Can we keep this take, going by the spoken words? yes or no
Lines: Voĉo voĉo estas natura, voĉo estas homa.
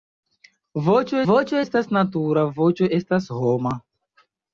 yes